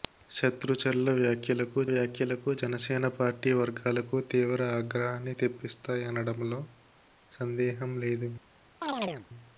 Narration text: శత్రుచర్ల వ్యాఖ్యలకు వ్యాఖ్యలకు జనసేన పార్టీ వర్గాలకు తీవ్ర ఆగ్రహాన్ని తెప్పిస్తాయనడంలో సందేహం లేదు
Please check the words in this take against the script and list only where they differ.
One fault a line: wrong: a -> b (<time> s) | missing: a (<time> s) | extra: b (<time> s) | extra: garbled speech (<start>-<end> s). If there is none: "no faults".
no faults